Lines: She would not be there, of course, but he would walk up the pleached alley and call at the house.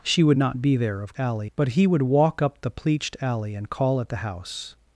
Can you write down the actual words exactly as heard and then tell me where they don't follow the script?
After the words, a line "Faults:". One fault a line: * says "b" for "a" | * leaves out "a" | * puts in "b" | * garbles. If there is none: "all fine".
She would not be there, of alley, but he would walk up the pleached alley and call at the house.
Faults:
* says "alley" for "course"